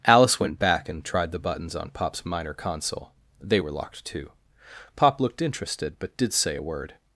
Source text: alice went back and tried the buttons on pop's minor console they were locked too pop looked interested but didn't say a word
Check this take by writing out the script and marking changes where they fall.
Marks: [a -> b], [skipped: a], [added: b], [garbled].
alice went back and tried the buttons on pop's minor console they were locked too pop looked interested but [didn't -> did] say a word